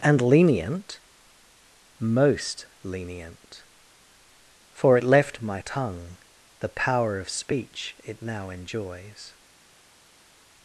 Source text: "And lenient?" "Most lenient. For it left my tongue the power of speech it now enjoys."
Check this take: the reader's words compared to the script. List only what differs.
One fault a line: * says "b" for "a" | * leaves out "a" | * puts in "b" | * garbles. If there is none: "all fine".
all fine